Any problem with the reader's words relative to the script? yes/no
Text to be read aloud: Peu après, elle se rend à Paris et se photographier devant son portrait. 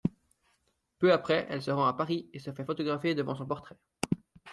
yes